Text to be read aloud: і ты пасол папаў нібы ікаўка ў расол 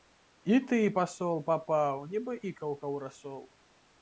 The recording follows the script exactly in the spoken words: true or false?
true